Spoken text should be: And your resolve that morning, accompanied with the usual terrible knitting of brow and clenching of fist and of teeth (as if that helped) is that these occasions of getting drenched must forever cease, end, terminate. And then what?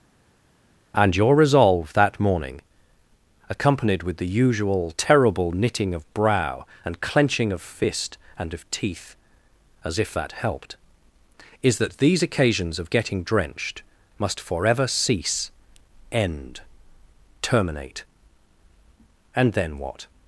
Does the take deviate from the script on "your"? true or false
false